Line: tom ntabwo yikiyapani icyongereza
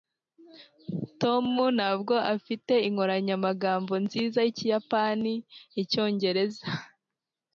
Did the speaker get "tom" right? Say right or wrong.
right